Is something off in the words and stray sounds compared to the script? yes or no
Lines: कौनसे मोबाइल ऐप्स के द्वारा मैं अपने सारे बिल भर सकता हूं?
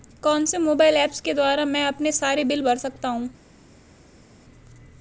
no